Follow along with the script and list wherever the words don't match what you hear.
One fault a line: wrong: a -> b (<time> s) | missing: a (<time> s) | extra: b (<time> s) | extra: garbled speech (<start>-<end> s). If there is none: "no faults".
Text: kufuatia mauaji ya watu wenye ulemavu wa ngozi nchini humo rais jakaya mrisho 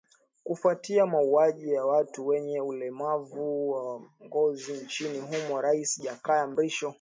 no faults